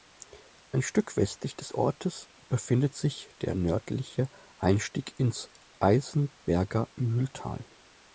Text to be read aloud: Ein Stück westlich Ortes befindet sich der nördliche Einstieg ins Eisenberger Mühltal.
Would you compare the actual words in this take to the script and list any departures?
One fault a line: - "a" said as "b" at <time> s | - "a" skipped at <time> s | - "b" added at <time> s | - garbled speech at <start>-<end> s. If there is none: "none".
- "des" added at 1.6 s